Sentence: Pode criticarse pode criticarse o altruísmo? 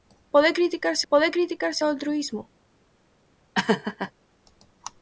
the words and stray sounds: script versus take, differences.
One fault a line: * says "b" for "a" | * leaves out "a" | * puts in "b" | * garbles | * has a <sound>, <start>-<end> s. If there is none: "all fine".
* has a laugh, 3.5-4.1 s